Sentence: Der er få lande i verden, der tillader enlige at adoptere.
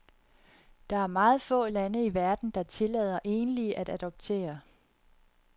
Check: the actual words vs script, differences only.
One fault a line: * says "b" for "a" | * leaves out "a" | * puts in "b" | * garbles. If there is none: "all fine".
* puts in "meget"